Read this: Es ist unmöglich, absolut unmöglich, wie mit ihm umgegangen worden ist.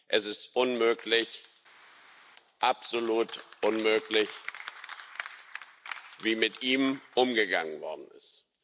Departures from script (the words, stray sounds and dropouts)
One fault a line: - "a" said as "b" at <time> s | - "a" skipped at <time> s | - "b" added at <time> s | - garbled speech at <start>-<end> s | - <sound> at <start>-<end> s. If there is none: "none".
none